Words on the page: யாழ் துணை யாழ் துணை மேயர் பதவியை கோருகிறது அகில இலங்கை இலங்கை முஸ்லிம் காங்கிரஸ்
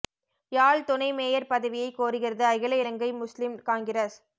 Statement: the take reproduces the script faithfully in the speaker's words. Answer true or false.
false